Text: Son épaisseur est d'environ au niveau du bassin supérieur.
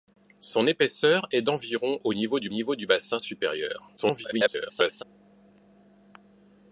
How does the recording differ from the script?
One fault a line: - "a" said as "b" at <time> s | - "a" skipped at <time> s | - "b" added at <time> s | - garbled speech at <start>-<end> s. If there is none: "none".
- "niveau du" added at 2.5 s
- garbled speech at 4.0-5.0 s